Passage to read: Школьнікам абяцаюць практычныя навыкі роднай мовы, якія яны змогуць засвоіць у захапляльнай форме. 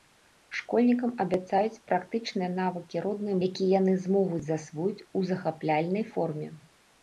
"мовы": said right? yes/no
no